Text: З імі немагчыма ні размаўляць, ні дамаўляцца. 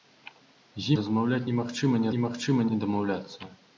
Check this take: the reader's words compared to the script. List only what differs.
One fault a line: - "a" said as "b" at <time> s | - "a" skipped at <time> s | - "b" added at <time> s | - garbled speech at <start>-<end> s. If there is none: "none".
- "імі" said as "размаўляць" at 1.0 s
- "размаўляць" said as "немагчыма" at 2.1 s